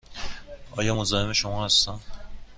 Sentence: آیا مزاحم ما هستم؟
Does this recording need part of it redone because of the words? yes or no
yes